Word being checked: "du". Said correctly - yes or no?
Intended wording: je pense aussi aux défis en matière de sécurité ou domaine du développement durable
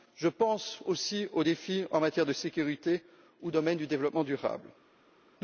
yes